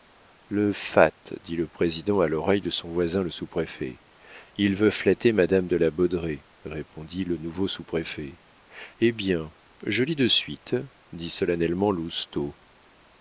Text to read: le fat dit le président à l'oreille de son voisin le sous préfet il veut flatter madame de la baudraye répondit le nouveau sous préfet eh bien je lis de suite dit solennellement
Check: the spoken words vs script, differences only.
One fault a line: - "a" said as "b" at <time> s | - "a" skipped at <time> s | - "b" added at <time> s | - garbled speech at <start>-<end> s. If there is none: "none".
none